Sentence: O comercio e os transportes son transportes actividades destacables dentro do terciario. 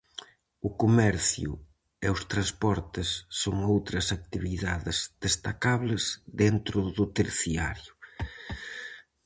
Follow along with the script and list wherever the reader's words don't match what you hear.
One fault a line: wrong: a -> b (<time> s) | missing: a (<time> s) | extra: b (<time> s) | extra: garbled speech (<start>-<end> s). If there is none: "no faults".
wrong: transportes -> outras (3.7 s)